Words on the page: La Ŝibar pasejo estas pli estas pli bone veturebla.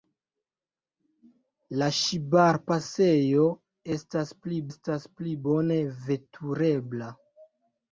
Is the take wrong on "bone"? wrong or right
right